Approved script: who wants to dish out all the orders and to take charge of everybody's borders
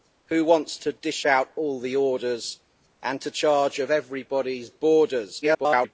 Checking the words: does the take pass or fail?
fail